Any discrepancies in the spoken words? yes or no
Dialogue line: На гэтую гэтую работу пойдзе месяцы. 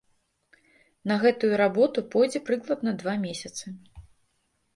yes